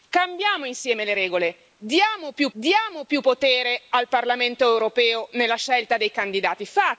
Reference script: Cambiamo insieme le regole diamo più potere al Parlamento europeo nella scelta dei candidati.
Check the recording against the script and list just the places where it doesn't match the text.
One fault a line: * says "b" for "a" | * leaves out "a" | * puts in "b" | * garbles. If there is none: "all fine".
* puts in "diamo più"